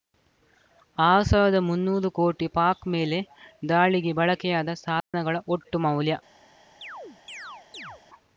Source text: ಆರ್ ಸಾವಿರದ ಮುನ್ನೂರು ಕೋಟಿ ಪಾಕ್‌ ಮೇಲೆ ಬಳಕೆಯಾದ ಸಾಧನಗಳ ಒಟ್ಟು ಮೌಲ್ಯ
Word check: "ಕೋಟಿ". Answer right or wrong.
right